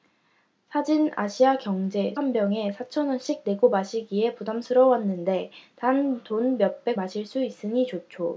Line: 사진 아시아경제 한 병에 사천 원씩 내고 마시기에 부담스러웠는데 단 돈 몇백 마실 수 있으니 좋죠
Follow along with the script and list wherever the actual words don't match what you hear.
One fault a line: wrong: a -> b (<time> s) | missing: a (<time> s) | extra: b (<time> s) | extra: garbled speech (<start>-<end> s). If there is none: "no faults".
no faults